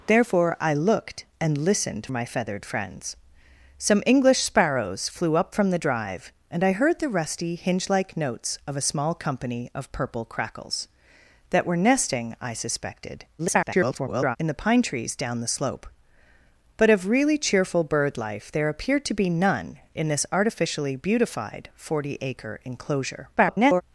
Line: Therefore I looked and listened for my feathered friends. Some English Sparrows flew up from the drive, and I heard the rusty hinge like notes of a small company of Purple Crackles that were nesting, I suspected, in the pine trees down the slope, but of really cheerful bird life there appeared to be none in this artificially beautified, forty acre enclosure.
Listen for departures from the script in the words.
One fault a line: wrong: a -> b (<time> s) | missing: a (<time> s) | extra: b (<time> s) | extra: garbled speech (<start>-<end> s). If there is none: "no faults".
missing: for (2.1 s)
extra: garbled speech (13.4-14.4 s)
extra: garbled speech (23.4-23.8 s)